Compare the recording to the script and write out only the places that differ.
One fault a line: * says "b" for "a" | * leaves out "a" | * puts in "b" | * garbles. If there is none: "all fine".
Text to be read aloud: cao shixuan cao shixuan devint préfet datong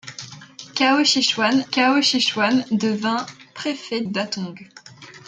all fine